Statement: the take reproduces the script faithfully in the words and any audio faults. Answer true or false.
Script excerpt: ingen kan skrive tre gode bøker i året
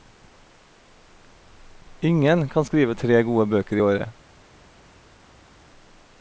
true